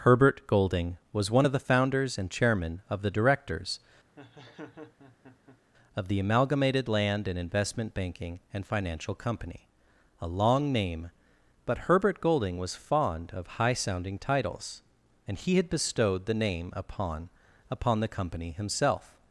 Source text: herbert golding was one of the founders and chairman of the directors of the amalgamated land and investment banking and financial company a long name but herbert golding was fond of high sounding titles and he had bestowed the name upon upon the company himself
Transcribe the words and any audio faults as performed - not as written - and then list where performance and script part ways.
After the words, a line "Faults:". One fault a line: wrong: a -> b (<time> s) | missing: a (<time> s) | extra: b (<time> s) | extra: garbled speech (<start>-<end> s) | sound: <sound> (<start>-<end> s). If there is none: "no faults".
herbert golding was one of the founders and chairman of the directors of the amalgamated land and investment banking and financial company a long name but herbert golding was fond of high sounding titles and he had bestowed the name upon upon the company himself
Faults:
sound: laugh (4.2-5.6 s)